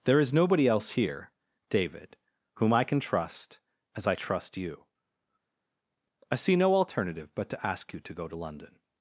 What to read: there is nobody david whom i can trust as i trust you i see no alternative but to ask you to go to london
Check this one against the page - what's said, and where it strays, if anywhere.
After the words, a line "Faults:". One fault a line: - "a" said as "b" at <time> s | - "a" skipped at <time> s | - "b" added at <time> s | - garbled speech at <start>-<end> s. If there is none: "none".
there is nobody else here david whom i can trust as i trust you i see no alternative but to ask you to go to london
Faults:
- "else here" added at 0.7 s